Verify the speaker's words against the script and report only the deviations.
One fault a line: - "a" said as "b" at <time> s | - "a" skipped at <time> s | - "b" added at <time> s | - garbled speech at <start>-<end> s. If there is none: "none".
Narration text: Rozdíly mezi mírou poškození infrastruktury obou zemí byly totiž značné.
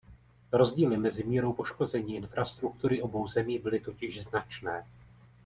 none